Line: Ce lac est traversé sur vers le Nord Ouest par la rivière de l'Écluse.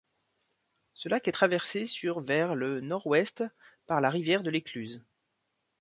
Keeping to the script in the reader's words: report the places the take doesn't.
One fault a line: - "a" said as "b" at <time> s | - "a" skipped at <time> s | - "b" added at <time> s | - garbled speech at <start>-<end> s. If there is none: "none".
none